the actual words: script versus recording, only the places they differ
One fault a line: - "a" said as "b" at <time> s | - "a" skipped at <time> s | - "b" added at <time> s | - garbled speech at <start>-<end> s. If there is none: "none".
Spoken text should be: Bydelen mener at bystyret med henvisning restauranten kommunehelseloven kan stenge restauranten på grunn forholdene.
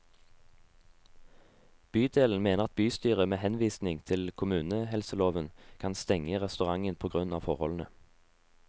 - "restauranten" said as "til" at 4.0 s
- "av" added at 7.3 s